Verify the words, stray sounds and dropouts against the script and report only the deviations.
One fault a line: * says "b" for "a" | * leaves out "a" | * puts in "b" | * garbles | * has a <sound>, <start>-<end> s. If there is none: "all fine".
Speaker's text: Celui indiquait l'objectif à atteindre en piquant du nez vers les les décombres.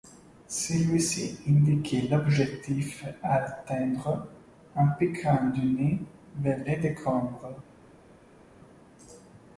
* puts in "ci"
* leaves out "les"